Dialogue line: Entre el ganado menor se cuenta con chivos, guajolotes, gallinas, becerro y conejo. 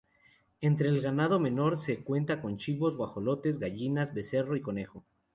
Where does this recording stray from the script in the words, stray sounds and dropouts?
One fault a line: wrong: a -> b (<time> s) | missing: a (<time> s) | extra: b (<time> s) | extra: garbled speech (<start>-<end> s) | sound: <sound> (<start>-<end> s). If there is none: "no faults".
no faults